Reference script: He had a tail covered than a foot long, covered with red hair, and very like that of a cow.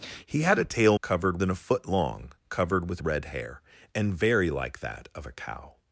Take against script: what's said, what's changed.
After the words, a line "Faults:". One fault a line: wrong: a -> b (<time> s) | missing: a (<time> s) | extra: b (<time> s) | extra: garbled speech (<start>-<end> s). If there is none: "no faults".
He had a tail covered than a foot long, covered with red hair, and very like that of a cow.
Faults:
no faults